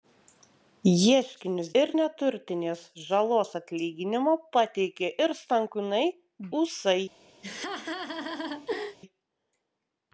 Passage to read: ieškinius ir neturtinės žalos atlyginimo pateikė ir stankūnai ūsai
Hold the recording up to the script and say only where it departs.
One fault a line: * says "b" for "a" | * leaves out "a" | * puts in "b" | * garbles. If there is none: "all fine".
all fine